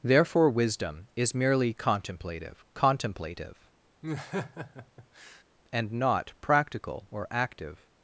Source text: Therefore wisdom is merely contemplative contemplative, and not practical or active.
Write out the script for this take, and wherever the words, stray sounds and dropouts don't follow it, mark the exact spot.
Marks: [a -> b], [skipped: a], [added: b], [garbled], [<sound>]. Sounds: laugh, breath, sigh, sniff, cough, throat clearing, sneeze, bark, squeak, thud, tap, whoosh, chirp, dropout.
Therefore wisdom is merely contemplative contemplative, [laugh] and not practical or active.